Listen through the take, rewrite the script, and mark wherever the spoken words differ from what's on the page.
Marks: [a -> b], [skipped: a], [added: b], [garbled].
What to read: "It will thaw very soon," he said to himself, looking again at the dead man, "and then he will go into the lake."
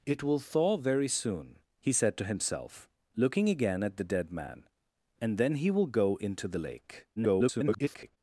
"It will thaw very soon," he said to himself, looking again at the dead man, "and then he will go into the lake." [garbled]